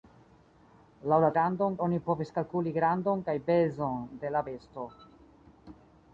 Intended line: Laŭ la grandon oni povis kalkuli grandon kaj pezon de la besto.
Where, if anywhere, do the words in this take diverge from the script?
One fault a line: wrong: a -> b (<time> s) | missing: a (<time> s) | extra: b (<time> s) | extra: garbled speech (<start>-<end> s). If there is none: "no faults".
no faults